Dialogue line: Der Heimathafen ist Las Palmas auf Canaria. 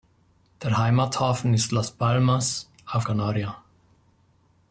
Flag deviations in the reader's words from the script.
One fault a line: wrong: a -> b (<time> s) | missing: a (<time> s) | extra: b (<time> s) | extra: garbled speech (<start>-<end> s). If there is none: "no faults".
no faults